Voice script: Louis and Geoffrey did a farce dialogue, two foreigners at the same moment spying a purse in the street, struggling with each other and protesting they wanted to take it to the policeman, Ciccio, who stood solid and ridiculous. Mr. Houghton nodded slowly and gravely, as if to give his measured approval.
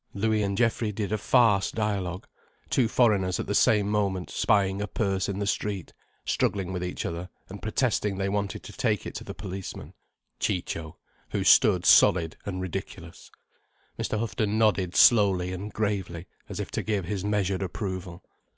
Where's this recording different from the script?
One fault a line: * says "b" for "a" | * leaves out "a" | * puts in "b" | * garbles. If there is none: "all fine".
all fine